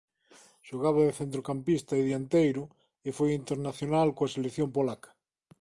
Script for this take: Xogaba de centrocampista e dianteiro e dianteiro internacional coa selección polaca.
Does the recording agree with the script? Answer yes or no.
no